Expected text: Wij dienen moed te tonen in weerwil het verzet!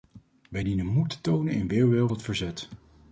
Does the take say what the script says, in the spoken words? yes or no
yes